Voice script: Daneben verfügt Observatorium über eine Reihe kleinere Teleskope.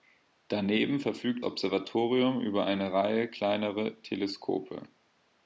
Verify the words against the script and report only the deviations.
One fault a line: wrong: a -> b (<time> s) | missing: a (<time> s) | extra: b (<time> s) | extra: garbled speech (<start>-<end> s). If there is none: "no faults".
no faults